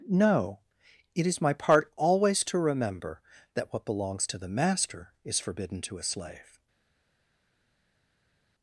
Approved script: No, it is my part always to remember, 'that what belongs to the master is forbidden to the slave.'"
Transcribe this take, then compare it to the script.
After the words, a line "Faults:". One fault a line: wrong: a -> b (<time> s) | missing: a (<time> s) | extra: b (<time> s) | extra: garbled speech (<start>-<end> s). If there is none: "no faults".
No, it is my part always to remember, 'that what belongs to the master is forbidden to a slave.'"
Faults:
wrong: the -> a (6.0 s)